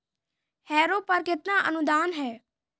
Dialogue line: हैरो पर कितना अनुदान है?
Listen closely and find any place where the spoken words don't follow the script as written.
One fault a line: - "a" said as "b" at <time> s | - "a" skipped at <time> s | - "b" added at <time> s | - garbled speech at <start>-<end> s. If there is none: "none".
none